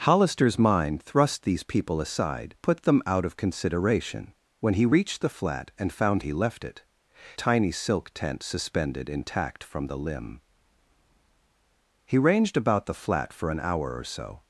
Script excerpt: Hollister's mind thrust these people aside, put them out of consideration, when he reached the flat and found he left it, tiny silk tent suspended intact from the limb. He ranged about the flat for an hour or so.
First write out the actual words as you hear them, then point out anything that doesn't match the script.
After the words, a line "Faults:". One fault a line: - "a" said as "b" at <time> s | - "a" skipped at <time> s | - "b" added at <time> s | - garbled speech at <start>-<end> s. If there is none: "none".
Hollister's mind thrust these people aside, put them out of consideration, when he reached the flat and found he left it, tiny silk tent suspended intact from the limb. He ranged about the flat for an hour or so.
Faults:
none